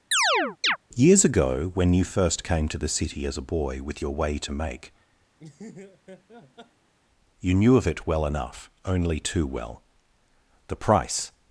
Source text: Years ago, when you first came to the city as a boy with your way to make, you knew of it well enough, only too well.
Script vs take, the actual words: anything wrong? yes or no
yes